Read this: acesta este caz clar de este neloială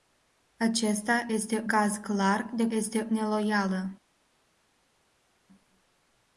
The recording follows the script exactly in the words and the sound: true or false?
true